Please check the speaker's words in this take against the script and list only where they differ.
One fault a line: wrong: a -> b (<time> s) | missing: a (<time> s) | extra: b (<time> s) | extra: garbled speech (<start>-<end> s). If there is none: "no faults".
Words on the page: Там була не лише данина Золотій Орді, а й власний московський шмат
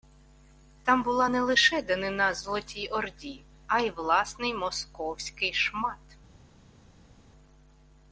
no faults